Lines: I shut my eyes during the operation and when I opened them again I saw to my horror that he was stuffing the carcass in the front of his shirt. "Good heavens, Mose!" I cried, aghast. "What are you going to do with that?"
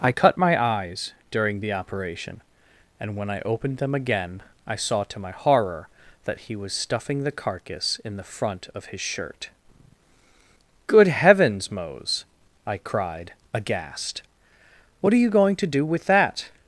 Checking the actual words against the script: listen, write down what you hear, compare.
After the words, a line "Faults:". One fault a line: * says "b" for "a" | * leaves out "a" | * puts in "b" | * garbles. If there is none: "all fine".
I cut my eyes during the operation and when I opened them again I saw to my horror that he was stuffing the carcass in the front of his shirt. "Good heavens, Mose!" I cried, aghast. "What are you going to do with that?"
Faults:
* says "cut" for "shut"